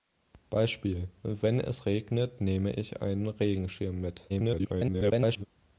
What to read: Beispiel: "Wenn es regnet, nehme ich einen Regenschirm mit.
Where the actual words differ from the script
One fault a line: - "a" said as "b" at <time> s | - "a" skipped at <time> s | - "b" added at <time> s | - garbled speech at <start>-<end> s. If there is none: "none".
- garbled speech at 4.3-5.5 s